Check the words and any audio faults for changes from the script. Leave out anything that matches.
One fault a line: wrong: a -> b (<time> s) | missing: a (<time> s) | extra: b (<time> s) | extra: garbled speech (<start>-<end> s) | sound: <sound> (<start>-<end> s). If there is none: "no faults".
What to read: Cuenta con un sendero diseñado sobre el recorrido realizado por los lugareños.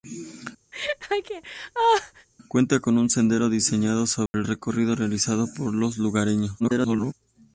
sound: laugh (0.7-2.3 s)
sound: dropout (4.3-4.3 s)
extra: garbled speech (6.6-7.1 s)